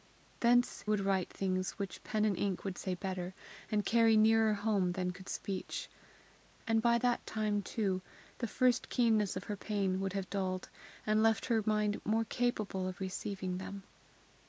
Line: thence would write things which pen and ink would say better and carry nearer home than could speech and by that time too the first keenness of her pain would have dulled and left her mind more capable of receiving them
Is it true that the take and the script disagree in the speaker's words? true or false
false